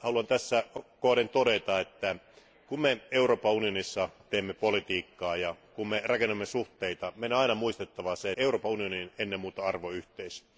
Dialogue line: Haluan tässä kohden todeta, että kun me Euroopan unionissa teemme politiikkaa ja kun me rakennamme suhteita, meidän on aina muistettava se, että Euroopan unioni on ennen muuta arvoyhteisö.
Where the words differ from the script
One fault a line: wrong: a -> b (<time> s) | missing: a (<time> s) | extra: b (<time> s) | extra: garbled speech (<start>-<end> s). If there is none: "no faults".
missing: että (8.3 s)